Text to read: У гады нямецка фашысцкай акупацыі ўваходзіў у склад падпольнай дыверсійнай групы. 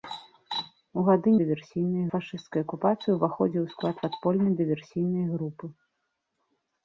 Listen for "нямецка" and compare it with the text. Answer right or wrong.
wrong